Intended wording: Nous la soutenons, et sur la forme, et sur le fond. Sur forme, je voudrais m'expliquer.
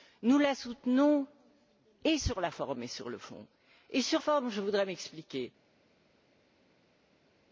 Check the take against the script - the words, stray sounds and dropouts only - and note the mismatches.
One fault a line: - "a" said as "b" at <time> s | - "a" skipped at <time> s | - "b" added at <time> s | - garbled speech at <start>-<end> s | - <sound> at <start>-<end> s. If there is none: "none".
none